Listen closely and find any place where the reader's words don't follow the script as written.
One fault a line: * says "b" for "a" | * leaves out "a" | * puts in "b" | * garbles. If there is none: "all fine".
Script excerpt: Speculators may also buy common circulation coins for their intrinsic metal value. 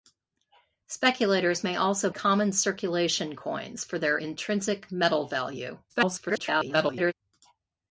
* leaves out "buy"
* garbles